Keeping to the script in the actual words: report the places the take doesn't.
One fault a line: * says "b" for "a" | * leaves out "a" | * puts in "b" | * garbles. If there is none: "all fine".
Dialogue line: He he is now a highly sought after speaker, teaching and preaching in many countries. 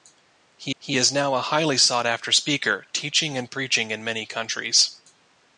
all fine